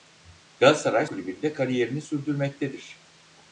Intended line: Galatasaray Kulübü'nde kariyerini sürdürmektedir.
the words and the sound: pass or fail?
pass